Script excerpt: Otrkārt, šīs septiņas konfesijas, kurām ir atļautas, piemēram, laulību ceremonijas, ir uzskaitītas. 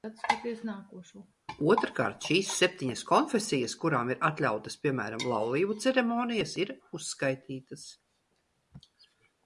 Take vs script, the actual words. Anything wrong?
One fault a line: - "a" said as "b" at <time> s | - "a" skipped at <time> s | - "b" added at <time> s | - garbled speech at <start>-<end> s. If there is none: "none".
none